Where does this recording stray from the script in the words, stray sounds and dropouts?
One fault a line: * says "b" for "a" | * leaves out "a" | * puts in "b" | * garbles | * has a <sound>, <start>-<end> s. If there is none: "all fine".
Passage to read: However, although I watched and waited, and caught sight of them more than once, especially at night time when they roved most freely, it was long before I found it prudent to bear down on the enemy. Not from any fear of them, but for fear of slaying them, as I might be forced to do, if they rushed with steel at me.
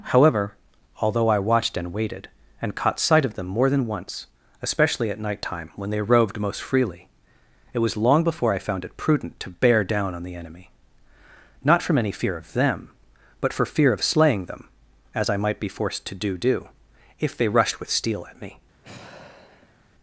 * puts in "do"
* has a sigh, 18.8-19.9 s